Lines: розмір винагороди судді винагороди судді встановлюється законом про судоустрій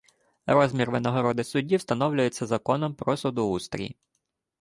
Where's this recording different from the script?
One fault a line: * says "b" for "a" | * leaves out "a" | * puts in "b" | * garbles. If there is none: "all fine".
* leaves out "винагороди судді"